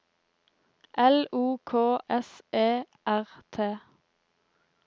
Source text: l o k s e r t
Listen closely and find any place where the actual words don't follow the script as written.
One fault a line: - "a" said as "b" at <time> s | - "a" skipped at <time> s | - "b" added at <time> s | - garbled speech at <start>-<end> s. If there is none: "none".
none